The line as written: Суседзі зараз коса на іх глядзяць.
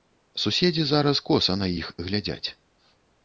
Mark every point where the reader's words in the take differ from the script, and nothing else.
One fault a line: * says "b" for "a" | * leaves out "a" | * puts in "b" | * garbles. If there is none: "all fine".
all fine